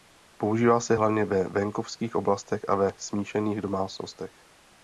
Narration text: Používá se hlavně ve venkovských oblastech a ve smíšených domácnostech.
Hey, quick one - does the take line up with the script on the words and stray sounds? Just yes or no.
yes